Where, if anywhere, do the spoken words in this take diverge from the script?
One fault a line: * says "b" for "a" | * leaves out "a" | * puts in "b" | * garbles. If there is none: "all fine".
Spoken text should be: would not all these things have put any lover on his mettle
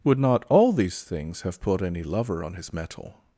all fine